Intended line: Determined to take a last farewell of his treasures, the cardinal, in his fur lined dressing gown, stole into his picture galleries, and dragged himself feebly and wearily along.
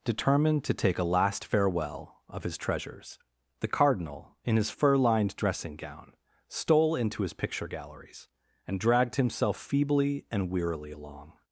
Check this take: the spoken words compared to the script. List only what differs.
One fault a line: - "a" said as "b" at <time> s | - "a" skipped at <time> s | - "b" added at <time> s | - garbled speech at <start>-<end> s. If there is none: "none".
none